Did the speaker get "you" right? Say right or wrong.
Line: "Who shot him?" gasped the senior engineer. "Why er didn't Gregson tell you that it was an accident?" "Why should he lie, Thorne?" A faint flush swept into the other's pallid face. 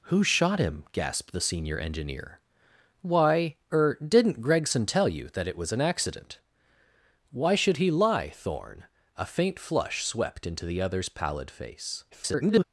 right